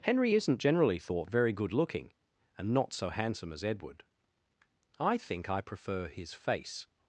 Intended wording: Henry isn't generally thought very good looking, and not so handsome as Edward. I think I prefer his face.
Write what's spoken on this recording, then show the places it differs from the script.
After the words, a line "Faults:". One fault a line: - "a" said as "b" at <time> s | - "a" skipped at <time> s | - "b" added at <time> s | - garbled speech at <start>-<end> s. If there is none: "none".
Henry isn't generally thought very good looking, and not so handsome as Edward. I think I prefer his face.
Faults:
none